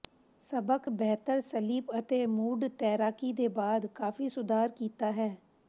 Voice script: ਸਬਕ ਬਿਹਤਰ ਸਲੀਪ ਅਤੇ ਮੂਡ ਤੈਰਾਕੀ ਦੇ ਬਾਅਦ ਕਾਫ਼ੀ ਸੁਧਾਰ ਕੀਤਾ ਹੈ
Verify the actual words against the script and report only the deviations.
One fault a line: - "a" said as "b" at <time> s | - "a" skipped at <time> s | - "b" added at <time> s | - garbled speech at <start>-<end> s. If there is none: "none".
none